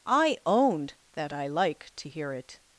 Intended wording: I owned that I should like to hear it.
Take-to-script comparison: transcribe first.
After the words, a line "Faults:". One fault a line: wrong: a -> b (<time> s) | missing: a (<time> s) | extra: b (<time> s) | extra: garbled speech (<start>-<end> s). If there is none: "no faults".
I owned that I like to hear it.
Faults:
missing: should (1.5 s)